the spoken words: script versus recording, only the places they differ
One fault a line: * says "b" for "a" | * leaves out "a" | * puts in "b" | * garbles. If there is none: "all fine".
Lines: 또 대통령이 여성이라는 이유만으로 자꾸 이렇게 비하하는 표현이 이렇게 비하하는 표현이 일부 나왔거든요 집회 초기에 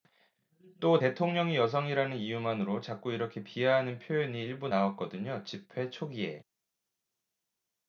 * leaves out "이렇게 비하하는 표현이"